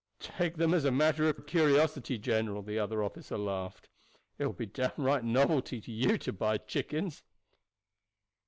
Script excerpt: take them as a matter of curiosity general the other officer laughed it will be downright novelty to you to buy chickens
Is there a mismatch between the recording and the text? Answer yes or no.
yes